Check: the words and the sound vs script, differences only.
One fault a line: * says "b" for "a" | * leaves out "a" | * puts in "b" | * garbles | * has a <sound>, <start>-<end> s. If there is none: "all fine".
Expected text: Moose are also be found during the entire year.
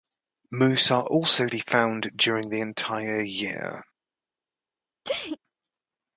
* has a sneeze, 5.0-5.4 s